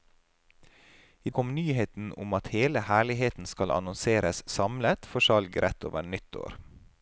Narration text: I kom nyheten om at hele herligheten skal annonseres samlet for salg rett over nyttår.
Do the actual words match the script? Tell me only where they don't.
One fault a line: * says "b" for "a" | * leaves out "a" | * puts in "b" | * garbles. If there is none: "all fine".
all fine